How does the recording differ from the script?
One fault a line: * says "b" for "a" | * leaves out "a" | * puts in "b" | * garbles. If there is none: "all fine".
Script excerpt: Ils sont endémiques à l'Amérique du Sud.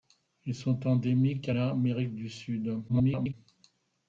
* garbles